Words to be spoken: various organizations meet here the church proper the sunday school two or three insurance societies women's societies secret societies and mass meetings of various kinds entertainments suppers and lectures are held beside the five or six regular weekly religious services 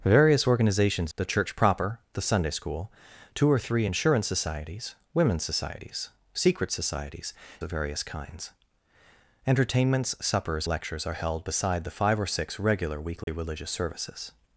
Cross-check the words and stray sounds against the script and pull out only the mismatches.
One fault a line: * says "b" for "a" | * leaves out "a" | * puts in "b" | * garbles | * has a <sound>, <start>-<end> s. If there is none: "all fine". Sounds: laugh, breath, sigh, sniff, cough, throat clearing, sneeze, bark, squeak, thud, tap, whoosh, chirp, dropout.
* leaves out "meet here"
* leaves out "and mass meetings"
* leaves out "and"
* has a dropout, 13.2-13.3 s